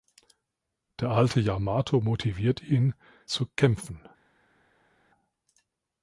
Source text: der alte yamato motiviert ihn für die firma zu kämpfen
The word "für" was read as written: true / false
false